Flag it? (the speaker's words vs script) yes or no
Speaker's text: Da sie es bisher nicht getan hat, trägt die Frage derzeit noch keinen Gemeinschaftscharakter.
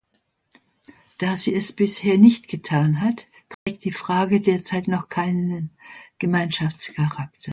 no